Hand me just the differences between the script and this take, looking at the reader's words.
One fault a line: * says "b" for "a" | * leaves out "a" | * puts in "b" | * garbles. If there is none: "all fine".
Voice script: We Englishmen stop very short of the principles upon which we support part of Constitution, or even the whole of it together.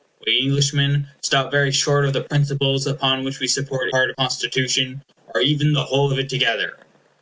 all fine